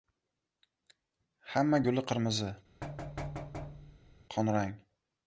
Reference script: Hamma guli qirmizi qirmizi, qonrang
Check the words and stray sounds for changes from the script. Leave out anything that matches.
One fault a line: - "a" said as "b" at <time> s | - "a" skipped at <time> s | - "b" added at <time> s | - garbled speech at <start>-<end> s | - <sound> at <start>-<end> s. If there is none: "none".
- "qirmizi" skipped at 2.6 s
- thud at 2.8-4.2 s